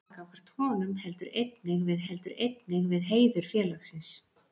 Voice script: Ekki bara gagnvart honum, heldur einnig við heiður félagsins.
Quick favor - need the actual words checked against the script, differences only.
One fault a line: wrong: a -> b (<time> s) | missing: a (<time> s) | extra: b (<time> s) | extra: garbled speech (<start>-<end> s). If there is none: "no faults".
missing: bara (0.1 s)
extra: heldur einnig við (2.1 s)